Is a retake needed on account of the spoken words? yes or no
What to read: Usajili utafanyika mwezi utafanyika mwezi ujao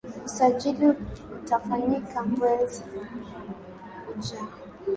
yes